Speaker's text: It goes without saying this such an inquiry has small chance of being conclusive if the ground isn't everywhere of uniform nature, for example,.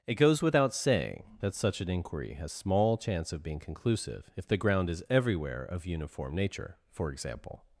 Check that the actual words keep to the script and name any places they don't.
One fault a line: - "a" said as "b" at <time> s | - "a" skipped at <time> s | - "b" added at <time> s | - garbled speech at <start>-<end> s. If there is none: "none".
- "this" said as "that" at 1.4 s
- "isn't" said as "is" at 4.9 s